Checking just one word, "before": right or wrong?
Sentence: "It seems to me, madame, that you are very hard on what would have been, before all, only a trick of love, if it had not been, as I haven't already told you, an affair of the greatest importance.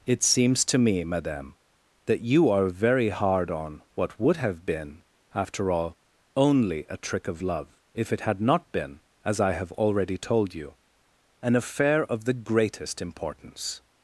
wrong